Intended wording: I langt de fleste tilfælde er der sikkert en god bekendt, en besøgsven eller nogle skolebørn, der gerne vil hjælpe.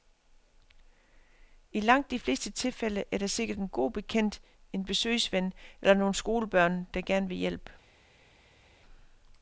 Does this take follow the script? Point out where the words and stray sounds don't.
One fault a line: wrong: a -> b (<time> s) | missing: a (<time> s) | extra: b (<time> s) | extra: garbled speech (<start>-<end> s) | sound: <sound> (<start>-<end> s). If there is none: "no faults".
no faults